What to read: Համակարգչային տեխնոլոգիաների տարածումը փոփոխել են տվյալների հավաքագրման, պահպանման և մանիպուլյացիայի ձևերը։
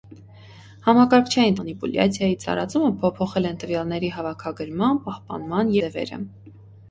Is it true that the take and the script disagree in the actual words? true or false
true